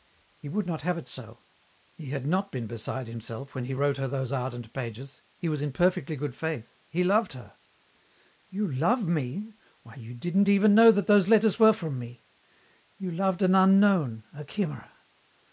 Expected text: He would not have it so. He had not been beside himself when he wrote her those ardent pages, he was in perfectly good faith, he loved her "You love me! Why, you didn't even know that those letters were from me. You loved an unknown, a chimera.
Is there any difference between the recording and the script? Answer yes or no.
no